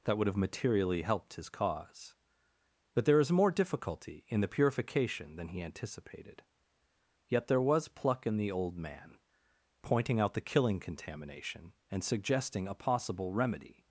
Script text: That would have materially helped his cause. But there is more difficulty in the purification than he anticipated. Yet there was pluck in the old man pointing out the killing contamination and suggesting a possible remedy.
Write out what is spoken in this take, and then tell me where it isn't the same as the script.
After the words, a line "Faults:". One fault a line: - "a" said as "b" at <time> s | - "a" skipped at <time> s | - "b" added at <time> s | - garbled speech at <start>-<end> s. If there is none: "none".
That would have materially helped his cause. But there is more difficulty in the purification than he anticipated. Yet there was pluck in the old man pointing out the killing contamination and suggesting a possible remedy.
Faults:
none